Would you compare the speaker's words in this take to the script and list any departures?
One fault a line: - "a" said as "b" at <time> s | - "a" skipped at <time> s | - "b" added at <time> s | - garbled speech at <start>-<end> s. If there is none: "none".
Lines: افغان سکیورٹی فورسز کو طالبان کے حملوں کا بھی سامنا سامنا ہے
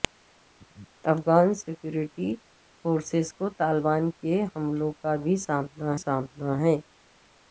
none